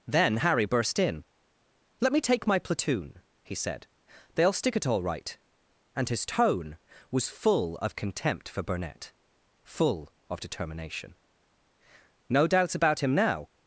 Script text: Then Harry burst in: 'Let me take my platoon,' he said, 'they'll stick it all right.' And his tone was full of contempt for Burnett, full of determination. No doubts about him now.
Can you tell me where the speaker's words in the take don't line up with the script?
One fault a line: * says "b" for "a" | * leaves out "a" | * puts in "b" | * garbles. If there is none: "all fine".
all fine